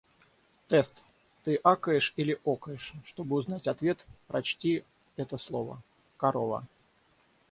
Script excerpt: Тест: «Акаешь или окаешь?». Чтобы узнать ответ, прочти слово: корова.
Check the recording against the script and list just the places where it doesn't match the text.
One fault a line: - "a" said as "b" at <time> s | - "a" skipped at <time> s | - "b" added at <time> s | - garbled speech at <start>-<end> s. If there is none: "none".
- "Ты" added at 1.4 s
- "это" added at 5.2 s